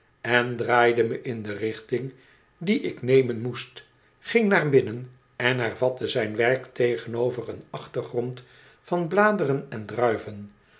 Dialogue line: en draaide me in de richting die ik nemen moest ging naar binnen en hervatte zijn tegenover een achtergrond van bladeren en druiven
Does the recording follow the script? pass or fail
fail